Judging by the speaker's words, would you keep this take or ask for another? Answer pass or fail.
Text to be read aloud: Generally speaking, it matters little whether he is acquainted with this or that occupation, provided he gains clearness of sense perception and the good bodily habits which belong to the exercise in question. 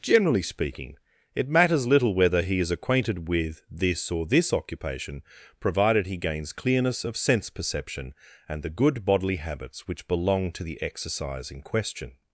fail